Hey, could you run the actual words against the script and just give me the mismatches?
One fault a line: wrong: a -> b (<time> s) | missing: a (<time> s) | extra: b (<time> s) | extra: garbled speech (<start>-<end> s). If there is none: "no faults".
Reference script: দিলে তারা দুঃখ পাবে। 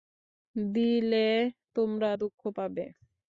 wrong: তারা -> তোমরা (1.8 s)